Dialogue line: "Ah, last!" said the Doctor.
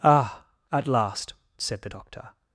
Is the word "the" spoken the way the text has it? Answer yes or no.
yes